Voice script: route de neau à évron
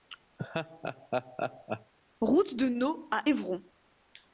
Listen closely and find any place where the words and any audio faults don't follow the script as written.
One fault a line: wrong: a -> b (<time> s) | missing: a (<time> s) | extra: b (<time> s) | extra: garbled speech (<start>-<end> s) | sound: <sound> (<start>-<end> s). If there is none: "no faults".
sound: laugh (0.4-1.9 s)